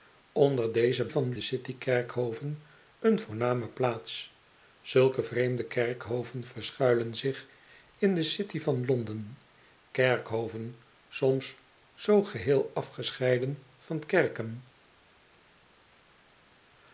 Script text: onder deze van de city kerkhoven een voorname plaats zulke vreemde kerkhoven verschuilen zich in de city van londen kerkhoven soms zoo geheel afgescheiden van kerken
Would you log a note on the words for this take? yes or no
no